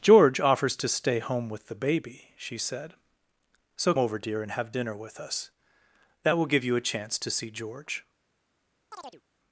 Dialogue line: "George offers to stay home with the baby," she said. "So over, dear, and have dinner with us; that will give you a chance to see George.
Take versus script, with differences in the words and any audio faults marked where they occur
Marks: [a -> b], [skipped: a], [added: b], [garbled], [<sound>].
"George offers to stay home with the baby," she said. "So over, dear, and have dinner with us; that will give you a chance to see George. [chirp]